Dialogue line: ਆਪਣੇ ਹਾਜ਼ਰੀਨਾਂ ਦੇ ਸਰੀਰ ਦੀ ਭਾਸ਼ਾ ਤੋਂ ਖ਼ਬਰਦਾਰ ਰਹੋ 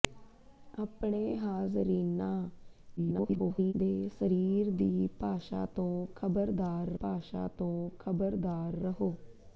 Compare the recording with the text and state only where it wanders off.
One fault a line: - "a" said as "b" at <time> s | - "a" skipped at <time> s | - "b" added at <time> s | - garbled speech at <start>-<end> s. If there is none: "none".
- garbled speech at 3.0-3.7 s
- "ਭਾਸ਼ਾ ਤੋਂ ਖ਼ਬਰਦਾਰ" added at 7.0 s